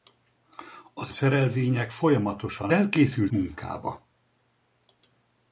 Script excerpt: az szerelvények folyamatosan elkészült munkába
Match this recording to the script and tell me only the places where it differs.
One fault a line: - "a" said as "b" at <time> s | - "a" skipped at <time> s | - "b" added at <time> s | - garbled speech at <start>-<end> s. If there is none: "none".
none